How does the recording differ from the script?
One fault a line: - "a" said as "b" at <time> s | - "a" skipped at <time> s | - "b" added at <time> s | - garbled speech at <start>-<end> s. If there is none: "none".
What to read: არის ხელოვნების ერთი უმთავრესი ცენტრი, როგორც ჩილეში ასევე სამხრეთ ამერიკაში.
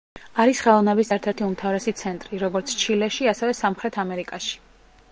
- "ერთ" added at 1.1 s